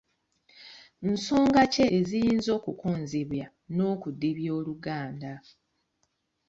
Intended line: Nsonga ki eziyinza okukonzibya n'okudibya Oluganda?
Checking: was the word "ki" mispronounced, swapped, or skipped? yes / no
no